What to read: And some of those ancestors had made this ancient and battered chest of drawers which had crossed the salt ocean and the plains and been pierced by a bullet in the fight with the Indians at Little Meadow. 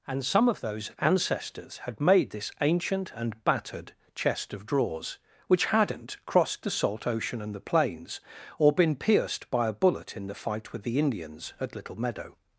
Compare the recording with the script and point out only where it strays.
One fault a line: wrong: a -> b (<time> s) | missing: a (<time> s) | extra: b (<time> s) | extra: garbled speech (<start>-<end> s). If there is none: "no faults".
wrong: had -> hadn't (5.7 s)
wrong: and -> or (8.6 s)